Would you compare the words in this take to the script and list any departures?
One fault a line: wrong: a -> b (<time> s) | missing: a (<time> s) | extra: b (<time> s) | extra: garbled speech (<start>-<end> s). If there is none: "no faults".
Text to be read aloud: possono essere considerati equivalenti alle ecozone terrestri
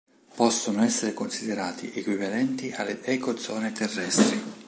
no faults